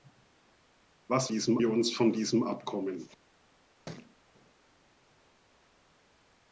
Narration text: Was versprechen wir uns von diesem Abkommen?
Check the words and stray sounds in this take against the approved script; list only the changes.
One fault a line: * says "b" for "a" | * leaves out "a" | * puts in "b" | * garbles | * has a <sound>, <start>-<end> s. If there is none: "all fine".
* says "diesem" for "versprechen"
* has a thud, 3.9-4.2 s